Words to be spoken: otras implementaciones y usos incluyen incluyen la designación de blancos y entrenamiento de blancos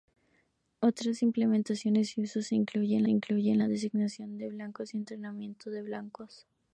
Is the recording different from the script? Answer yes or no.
no